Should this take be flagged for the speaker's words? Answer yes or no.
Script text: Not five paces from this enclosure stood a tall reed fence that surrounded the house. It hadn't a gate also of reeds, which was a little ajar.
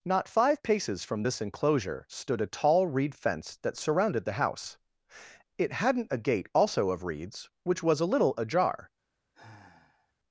no